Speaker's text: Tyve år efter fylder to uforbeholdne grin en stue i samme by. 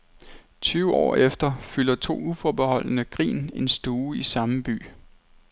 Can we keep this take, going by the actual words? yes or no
yes